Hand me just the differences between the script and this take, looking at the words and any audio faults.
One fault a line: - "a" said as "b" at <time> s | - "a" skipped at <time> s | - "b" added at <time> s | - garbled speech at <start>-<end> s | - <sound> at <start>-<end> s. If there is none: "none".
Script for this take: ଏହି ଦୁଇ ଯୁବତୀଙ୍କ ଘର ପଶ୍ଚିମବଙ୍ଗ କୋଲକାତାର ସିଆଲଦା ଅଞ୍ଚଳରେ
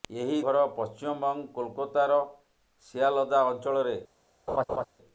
- "ଦୁଇ ଯୁବତୀଙ୍କ" skipped at 0.4 s
- laugh at 4.5-4.8 s